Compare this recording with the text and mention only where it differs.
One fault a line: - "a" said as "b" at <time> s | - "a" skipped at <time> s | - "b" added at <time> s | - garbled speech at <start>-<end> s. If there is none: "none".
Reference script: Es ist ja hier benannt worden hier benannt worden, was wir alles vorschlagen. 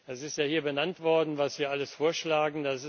- "hier benannt worden" skipped at 1.4 s